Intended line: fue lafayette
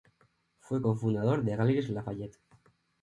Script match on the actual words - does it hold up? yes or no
no